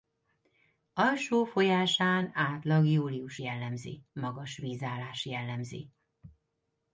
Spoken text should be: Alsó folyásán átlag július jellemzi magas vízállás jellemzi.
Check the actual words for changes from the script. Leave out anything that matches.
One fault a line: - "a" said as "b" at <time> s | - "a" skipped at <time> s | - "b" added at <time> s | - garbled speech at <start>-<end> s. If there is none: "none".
none